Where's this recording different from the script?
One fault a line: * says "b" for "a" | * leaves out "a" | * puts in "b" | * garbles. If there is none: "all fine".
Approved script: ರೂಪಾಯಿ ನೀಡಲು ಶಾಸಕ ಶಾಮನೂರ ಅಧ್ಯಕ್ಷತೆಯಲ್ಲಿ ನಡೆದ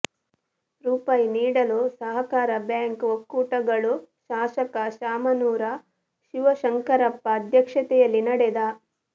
* puts in "ಸಹಕಾರ ಬ್ಯಾಂಕ್ ಒಕ್ಕೂಟಗಳು"
* puts in "ಶಿವಶಂಕರಪ್ಪ"